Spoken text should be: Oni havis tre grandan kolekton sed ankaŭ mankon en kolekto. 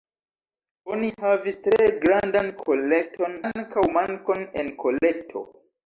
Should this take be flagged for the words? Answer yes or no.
yes